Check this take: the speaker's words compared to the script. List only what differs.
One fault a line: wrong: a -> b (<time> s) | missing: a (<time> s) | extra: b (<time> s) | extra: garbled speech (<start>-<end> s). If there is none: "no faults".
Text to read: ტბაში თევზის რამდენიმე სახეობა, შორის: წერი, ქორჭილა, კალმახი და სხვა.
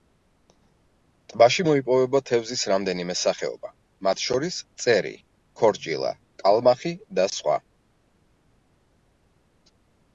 extra: მოიპოვება (1.7 s)
extra: მათ (4.1 s)